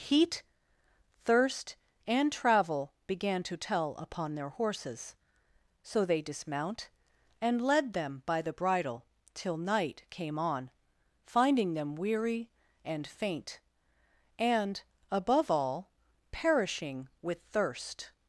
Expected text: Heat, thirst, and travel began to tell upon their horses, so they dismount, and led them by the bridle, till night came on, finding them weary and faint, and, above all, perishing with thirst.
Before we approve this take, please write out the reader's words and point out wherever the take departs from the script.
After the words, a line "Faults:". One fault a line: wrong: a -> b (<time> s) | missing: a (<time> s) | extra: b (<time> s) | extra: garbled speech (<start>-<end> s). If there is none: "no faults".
Heat, thirst, and travel began to tell upon their horses, so they dismount, and led them by the bridle, till night came on, finding them weary and faint, and, above all, perishing with thirst.
Faults:
no faults